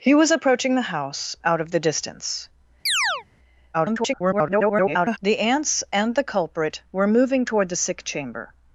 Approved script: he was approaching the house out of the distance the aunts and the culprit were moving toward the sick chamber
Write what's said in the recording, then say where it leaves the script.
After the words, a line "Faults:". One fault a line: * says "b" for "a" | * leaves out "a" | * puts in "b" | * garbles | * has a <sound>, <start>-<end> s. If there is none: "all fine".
he was approaching the house out of the distance [garbled] the aunts and the culprit were moving toward the sick chamber
Faults:
* has a chirp, 2.9-3.2 s
* garbles